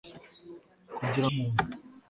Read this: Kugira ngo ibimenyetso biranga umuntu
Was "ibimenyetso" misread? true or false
true